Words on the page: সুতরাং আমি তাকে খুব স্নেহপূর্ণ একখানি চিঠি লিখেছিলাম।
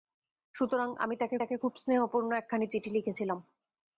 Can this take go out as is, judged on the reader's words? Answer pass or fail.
fail